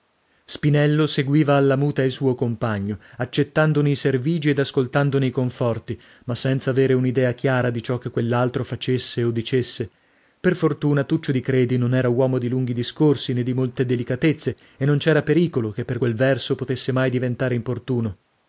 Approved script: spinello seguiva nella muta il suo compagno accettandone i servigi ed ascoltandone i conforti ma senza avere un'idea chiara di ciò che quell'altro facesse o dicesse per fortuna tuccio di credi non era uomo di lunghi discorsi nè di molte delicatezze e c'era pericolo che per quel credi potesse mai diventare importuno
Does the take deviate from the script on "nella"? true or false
true